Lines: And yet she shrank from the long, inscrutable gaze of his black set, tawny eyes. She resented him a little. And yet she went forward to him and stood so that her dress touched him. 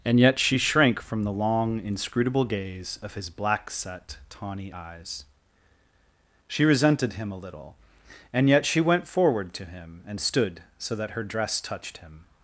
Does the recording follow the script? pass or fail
pass